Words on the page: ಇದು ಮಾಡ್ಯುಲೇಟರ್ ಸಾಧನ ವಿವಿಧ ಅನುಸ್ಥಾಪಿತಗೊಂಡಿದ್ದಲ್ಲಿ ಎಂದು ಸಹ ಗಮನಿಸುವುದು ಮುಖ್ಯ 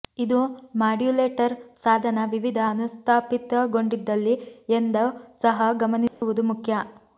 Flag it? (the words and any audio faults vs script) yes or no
yes